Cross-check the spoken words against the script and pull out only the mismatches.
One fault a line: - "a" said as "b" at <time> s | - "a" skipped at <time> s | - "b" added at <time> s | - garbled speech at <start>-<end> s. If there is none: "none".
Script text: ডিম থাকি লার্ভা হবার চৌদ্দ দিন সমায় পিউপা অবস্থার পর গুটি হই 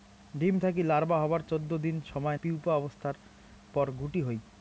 none